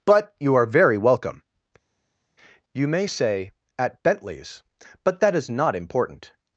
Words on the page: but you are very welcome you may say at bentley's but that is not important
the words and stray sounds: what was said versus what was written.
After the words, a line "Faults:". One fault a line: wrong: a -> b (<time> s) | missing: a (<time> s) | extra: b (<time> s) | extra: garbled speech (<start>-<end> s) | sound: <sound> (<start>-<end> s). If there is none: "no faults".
but you are very welcome you may say at bentley's but that is not important
Faults:
no faults